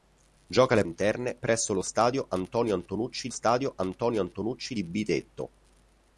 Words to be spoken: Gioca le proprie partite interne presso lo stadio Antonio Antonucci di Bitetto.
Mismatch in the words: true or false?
true